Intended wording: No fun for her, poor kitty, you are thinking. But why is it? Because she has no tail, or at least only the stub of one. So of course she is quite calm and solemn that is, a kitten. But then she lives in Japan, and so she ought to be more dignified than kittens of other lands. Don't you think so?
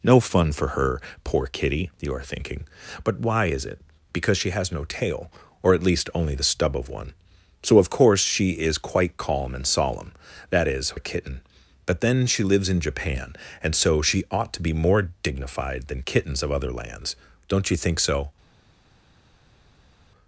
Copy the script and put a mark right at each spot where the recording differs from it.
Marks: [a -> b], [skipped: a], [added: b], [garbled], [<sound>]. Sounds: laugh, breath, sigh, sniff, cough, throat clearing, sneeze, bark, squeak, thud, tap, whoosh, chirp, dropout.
No fun for her, poor kitty, you are thinking. But why is it? Because she has no tail, or at least only the stub of one. So of course she is quite calm and solemn that is, a kitten. But then she lives in Japan, and so she ought to be more dignified than kittens of other lands. Don't you think so?